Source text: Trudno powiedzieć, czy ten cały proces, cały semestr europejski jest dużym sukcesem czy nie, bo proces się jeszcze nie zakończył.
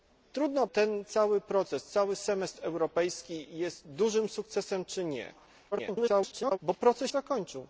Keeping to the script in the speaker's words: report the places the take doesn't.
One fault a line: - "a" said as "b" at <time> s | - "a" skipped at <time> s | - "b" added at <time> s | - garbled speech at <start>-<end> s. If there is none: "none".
- "powiedzieć czy" skipped at 0.7 s
- garbled speech at 5.7-6.6 s
- "się jeszcze nie" skipped at 7.1 s